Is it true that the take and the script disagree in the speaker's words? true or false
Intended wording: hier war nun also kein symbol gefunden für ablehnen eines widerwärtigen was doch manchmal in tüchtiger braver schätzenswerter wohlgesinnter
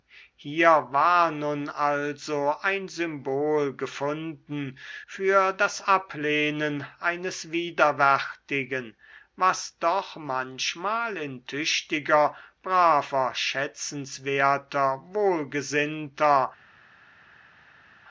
true